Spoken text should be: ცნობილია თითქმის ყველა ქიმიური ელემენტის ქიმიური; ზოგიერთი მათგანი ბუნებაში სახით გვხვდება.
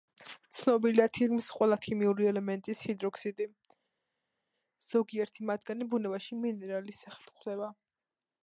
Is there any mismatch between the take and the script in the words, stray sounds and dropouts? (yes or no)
yes